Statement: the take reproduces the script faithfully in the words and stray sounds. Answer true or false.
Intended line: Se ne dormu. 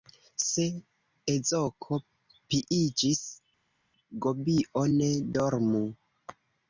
false